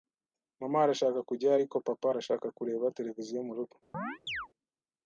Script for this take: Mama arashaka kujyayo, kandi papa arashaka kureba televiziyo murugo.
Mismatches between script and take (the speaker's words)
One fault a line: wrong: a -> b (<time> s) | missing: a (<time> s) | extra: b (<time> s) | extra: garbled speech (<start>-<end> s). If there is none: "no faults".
wrong: kandi -> ariko (1.5 s)